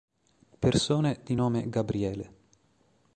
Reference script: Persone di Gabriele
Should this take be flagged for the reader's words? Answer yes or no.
yes